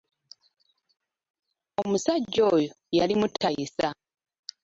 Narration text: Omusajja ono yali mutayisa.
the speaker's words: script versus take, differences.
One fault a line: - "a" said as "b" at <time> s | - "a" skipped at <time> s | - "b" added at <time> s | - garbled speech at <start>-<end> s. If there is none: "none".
- "ono" said as "oyo" at 2.5 s